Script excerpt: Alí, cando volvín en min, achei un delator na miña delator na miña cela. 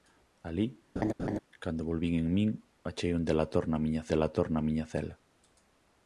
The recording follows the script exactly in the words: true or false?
true